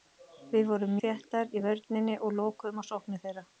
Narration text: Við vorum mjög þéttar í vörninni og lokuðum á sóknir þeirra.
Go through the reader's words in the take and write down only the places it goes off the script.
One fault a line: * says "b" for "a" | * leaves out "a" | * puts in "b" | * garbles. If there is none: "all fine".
* leaves out "mjög"